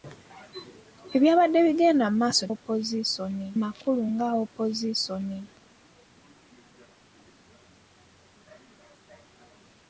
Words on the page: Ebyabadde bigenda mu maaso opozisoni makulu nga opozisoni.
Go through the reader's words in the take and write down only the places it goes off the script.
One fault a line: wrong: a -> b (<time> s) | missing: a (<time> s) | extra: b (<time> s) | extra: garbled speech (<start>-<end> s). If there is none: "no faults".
no faults